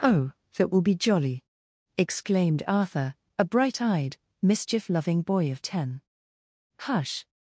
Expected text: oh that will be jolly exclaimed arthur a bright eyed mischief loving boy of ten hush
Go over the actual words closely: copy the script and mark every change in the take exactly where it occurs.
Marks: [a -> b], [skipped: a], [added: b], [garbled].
oh that will be jolly exclaimed arthur a bright eyed mischief loving boy of ten hush